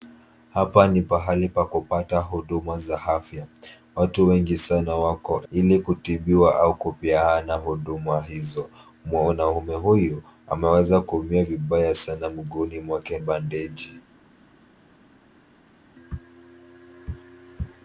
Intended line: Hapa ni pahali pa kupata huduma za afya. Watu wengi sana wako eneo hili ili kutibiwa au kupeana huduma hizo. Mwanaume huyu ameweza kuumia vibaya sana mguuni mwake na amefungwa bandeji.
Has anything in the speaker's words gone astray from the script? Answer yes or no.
yes